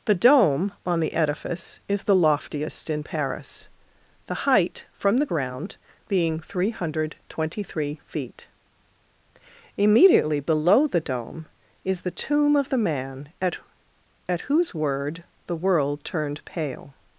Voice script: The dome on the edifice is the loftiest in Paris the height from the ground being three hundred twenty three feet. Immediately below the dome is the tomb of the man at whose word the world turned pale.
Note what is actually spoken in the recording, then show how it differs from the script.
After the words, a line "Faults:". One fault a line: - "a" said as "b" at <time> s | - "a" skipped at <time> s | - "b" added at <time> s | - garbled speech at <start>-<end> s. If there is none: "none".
The dome on the edifice is the loftiest in Paris the height from the ground being three hundred twenty three feet. Immediately below the dome is the tomb of the man at at whose word the world turned pale.
Faults:
- "at" added at 14.3 s